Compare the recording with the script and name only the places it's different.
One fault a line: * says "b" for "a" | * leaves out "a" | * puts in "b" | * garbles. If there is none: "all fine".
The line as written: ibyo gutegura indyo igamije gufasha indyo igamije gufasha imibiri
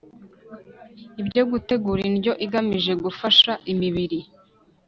* leaves out "indyo igamije gufasha"